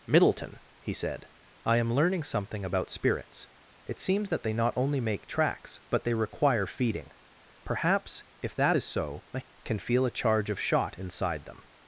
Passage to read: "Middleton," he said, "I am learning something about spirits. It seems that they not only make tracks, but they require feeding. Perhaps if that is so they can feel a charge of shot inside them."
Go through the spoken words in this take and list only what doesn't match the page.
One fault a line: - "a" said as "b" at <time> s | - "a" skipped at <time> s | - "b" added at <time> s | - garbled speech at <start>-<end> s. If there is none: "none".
- "they" said as "I" at 9.3 s